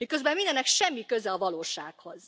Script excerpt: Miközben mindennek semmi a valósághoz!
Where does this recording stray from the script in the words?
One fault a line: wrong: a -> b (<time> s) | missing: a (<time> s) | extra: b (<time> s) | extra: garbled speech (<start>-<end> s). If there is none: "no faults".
extra: köze (1.1 s)